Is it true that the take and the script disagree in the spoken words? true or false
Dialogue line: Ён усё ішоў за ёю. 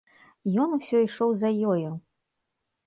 false